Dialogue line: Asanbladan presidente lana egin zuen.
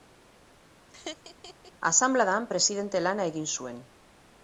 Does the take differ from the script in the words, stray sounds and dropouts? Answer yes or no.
yes